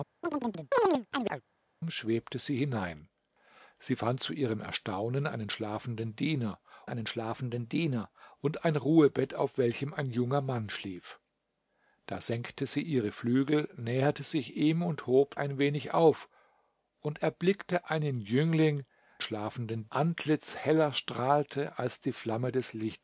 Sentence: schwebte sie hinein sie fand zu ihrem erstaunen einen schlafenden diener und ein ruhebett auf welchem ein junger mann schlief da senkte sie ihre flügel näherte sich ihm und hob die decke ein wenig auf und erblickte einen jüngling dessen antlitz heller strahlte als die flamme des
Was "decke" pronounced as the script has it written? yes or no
no